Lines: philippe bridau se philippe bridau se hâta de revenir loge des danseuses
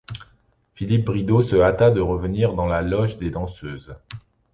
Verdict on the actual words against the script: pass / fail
fail